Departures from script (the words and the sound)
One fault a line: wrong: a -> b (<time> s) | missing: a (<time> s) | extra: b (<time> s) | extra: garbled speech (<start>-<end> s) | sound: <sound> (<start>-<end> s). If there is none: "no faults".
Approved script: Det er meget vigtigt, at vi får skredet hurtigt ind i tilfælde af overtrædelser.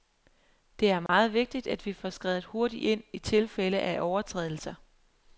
sound: dropout (1.1-1.1 s)